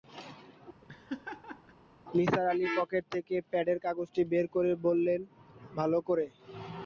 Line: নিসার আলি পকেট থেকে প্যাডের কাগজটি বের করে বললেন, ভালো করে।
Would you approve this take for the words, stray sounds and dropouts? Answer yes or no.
no